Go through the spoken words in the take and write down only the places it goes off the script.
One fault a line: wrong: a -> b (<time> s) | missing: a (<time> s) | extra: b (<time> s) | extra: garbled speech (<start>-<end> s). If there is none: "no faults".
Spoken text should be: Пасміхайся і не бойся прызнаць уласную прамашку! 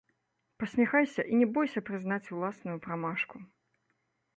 no faults